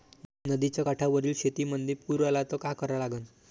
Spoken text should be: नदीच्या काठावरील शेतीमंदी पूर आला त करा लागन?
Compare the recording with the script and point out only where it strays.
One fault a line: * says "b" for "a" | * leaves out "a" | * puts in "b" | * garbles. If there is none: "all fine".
* puts in "का"